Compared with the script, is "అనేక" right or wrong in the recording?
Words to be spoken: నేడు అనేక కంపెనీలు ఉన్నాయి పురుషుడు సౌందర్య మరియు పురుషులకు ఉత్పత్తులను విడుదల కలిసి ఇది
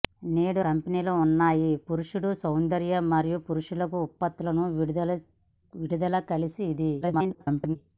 wrong